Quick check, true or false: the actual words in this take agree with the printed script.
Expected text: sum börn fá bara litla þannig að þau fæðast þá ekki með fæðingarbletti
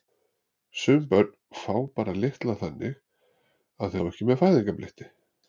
false